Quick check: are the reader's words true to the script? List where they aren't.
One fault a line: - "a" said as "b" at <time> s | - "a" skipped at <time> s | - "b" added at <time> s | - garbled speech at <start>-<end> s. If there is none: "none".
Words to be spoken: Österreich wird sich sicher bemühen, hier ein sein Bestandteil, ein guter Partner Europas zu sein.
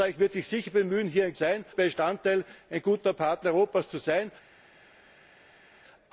none